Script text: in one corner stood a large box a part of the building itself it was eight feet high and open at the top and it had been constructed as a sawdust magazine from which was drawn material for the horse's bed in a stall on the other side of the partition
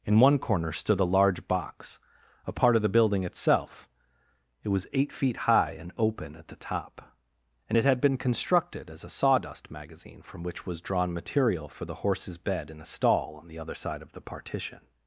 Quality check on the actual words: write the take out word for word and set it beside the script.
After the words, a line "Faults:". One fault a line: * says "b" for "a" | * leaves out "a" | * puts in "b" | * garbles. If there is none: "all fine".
in one corner stood a large box a part of the building itself it was eight feet high and open at the top and it had been constructed as a sawdust magazine from which was drawn material for the horse's bed in a stall on the other side of the partition
Faults:
all fine